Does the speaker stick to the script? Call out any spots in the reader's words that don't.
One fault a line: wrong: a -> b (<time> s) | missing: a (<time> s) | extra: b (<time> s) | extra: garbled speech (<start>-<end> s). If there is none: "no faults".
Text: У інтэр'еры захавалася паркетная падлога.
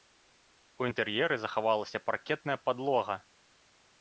no faults